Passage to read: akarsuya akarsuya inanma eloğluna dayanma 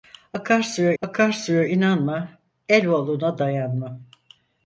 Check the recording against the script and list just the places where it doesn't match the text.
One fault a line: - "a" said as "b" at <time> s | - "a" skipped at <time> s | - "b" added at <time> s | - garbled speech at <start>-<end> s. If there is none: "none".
none